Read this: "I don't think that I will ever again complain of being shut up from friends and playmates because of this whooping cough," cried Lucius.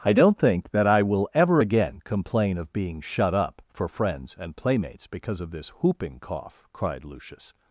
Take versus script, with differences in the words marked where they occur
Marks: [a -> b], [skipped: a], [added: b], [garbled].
"I don't think that I will ever again complain of being shut up [from -> for] friends and playmates because of this whooping cough," cried Lucius.